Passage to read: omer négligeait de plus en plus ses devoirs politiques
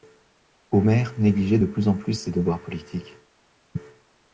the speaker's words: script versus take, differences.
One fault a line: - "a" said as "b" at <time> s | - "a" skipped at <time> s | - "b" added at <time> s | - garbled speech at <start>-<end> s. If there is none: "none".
none